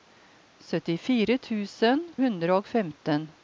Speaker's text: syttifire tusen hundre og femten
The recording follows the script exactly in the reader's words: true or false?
true